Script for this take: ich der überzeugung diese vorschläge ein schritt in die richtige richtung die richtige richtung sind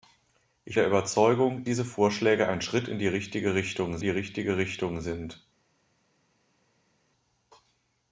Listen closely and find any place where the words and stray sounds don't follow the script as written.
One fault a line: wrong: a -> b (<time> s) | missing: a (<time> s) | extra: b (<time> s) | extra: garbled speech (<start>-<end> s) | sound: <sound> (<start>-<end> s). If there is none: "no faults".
no faults